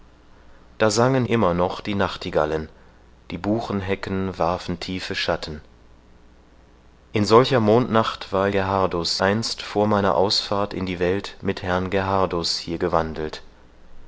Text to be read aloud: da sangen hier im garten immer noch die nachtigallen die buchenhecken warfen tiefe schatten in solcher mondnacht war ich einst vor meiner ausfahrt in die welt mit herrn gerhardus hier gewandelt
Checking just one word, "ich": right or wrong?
wrong